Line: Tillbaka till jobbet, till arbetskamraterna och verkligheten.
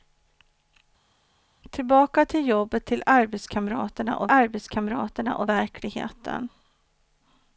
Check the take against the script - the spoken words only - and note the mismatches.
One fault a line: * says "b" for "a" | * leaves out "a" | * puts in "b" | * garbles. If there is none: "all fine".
* puts in "arbetskamraterna och"